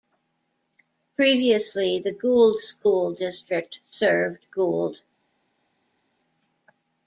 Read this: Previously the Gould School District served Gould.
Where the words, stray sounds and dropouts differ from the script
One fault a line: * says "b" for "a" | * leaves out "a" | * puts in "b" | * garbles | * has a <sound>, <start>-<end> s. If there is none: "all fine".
all fine